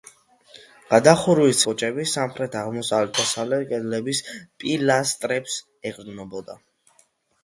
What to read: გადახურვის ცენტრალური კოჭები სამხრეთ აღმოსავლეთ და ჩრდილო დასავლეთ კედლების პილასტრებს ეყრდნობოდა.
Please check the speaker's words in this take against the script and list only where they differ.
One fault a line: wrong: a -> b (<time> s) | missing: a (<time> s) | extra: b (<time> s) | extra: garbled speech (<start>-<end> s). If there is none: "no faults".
missing: ცენტრალური (1.6 s)
missing: და ჩრდილო (3.2 s)